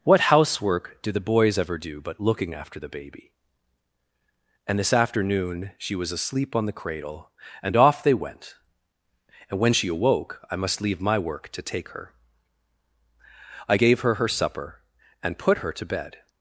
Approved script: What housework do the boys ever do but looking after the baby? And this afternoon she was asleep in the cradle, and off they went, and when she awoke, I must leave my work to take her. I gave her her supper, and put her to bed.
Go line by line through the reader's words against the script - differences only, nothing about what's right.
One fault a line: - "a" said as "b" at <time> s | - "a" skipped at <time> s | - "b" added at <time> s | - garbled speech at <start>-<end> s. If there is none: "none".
- "in" said as "on" at 6.5 s